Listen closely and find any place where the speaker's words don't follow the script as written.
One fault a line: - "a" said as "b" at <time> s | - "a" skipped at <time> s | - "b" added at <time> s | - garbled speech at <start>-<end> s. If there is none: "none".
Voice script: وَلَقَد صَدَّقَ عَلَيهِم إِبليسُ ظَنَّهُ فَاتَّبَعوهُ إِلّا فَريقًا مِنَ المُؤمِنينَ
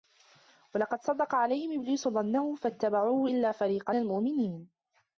- "مِنَ" skipped at 3.9 s